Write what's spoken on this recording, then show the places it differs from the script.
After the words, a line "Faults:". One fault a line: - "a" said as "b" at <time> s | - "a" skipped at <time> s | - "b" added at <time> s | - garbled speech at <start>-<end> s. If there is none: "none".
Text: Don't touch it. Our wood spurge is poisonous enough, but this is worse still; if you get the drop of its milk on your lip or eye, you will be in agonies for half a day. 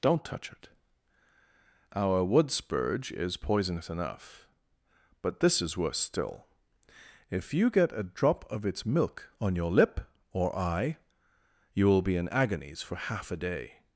Don't touch it. Our wood spurge is poisonous enough, but this is worse still; if you get a drop of its milk on your lip or eye, you will be in agonies for half a day.
Faults:
- "the" said as "a" at 7.9 s